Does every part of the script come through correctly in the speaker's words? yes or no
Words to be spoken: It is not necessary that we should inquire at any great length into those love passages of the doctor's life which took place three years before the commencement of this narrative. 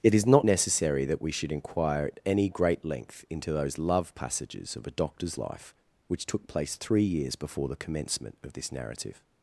no